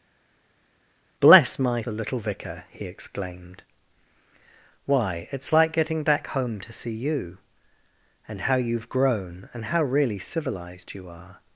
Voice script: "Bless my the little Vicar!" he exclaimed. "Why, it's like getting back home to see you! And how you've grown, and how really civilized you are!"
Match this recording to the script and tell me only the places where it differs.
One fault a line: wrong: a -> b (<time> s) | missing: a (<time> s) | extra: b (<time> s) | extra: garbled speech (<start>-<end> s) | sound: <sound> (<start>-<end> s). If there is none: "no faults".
no faults